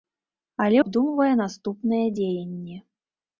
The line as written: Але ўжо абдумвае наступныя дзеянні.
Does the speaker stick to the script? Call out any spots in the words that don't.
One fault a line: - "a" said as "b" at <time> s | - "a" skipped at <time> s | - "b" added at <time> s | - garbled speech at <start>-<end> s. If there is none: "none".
- "ўжо" skipped at 0.8 s